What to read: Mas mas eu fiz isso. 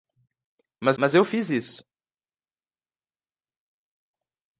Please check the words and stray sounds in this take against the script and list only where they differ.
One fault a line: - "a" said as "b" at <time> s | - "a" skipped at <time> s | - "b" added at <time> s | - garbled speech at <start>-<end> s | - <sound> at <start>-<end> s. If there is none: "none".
none